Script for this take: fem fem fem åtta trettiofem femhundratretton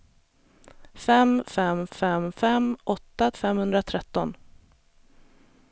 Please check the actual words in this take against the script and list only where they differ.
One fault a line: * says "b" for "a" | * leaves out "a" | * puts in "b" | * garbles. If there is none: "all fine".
* puts in "fem"
* leaves out "trettiofem"